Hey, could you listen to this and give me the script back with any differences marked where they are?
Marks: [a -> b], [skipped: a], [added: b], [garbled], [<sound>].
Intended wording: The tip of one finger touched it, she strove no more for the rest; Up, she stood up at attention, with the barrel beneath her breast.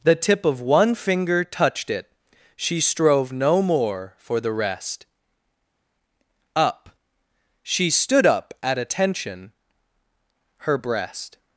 The tip of one finger touched it, she strove no more for the rest; Up, she stood up at attention, [skipped: with the barrel beneath] her breast.